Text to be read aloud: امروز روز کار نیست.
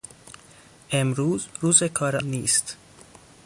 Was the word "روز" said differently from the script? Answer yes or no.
no